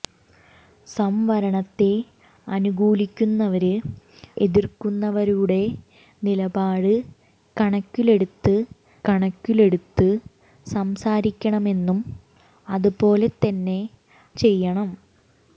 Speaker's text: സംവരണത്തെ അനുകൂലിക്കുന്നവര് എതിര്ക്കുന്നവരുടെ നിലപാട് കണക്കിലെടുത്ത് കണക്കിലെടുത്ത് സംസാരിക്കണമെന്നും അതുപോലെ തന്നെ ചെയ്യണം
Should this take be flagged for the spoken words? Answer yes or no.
no